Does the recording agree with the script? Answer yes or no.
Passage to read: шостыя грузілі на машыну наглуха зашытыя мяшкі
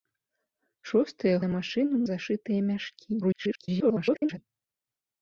no